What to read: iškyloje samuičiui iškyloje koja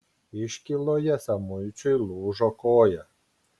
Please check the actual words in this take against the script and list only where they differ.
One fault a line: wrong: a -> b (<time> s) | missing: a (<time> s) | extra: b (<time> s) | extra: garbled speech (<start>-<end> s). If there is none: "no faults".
wrong: iškyloje -> lūžo (2.1 s)